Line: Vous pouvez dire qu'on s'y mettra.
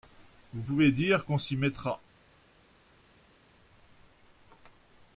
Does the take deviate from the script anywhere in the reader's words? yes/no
no